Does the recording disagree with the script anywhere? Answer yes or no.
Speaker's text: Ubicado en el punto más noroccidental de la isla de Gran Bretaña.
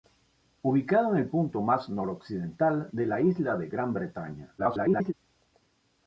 yes